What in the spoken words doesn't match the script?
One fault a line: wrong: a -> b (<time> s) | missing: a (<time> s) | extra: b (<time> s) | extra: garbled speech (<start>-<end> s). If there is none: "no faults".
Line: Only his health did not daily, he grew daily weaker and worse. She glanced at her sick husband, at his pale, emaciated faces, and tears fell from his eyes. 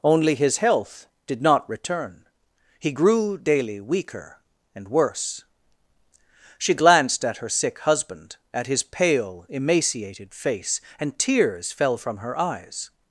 wrong: daily -> return (1.7 s)
wrong: faces -> face (10.3 s)
wrong: his -> her (12.2 s)